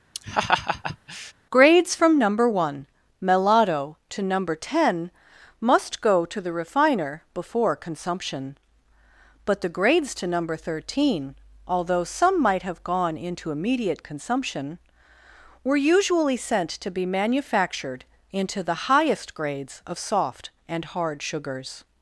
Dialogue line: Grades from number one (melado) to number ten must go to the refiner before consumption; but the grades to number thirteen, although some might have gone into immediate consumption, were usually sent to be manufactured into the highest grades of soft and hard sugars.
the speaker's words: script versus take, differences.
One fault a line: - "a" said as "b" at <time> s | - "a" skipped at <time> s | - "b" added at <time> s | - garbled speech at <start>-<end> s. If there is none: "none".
none